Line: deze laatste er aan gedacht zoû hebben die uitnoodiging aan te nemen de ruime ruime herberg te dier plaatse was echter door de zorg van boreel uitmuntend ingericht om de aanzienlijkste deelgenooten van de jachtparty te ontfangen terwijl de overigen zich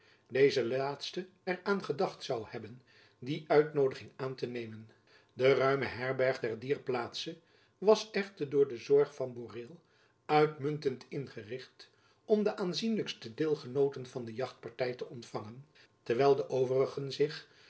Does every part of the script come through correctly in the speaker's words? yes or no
no